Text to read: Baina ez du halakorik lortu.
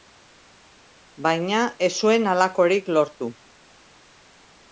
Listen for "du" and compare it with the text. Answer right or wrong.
wrong